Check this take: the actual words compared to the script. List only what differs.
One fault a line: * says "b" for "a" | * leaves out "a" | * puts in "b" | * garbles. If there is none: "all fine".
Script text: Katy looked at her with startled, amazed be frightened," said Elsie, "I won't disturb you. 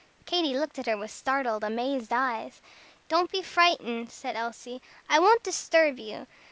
* puts in "eyes Don't"